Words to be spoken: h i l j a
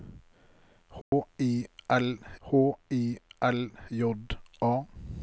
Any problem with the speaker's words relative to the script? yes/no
yes